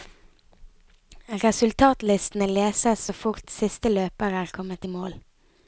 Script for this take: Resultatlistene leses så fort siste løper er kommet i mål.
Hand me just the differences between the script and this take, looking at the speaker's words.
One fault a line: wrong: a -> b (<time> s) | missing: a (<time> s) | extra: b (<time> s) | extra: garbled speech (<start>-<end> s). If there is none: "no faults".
no faults